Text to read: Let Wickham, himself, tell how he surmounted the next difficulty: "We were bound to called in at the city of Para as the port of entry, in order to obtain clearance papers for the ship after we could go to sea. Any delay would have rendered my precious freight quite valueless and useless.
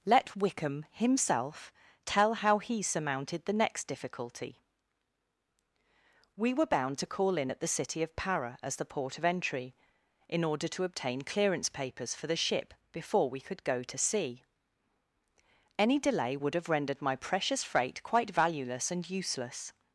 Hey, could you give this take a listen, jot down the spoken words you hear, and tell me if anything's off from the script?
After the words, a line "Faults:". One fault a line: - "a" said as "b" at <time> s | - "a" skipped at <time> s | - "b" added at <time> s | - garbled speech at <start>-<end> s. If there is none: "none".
Let Wickham, himself, tell how he surmounted the next difficulty: "We were bound to call in at the city of Para as the port of entry, in order to obtain clearance papers for the ship before we could go to sea. Any delay would have rendered my precious freight quite valueless and useless.
Faults:
- "called" said as "call" at 7.1 s
- "after" said as "before" at 12.9 s